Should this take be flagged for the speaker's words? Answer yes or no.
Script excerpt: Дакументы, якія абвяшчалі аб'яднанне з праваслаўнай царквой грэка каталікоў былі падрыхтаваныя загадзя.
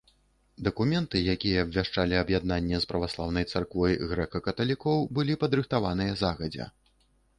no